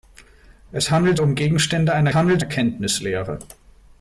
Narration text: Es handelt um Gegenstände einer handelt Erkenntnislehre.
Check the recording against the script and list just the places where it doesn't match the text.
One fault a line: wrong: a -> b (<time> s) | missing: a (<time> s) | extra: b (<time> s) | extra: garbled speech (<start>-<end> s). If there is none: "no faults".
no faults